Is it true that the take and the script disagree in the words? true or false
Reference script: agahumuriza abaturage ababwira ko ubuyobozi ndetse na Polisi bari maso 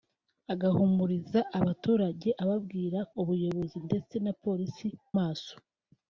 true